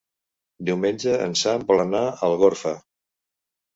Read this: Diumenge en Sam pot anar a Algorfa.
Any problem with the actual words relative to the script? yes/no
yes